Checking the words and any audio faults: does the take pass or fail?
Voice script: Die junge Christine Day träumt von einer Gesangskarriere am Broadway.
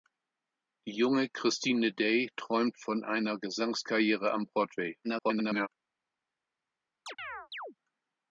fail